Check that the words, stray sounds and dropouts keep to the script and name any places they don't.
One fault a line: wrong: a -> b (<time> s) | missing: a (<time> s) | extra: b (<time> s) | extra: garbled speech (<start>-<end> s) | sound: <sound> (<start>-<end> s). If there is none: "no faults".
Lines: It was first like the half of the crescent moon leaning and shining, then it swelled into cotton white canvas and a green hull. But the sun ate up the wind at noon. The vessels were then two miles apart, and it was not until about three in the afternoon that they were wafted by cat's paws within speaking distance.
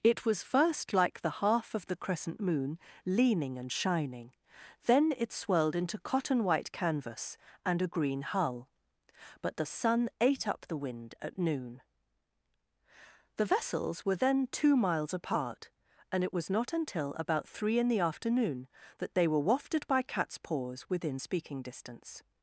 no faults